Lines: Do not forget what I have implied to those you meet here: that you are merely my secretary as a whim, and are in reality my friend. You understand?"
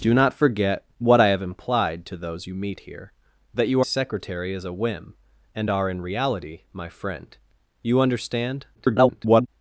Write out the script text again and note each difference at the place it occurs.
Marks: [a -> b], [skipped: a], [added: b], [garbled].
Do not forget what I have implied to those you meet here: that you [skipped: are merely my] secretary as a whim, and are in reality my friend. You understand?" [garbled]